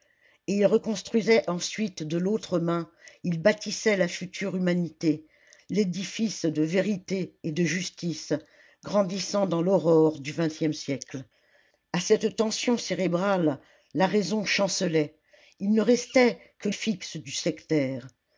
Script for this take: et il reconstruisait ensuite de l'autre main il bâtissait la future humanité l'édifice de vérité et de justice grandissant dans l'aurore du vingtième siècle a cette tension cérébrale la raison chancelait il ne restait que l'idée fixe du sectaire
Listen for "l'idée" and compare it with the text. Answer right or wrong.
wrong